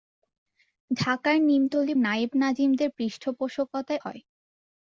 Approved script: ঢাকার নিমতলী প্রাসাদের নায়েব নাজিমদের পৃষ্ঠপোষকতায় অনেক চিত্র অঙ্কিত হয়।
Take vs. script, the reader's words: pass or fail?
fail